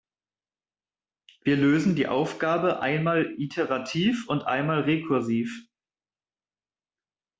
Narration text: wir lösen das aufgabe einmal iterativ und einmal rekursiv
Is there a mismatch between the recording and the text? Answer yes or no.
yes